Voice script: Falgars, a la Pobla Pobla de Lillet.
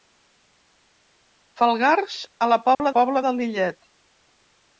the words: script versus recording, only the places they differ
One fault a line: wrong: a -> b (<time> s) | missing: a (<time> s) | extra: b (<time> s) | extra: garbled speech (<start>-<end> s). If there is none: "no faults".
no faults